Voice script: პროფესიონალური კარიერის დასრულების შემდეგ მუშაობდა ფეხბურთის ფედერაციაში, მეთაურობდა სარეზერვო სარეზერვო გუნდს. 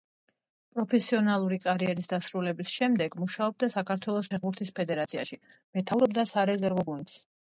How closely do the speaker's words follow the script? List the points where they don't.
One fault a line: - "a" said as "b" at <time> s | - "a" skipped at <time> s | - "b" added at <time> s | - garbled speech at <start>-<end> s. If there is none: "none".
- "საქართველოს" added at 3.7 s
- "სარეზერვო" skipped at 6.9 s